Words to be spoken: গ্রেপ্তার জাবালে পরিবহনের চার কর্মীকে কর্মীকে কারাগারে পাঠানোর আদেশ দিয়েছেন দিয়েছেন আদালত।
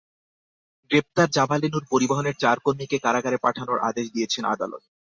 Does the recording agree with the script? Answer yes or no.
no